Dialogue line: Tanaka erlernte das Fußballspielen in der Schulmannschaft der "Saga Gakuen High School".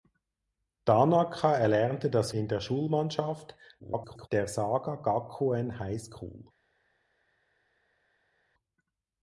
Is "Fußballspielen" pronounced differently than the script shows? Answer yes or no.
yes